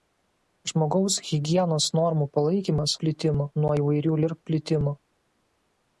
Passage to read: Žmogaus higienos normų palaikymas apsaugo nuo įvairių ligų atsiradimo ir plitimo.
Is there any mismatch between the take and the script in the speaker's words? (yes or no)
yes